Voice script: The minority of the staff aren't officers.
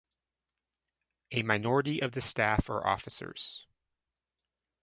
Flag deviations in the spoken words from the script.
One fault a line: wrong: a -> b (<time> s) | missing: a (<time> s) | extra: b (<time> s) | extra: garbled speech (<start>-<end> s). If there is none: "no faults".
wrong: The -> A (1.3 s)
wrong: aren't -> are (2.7 s)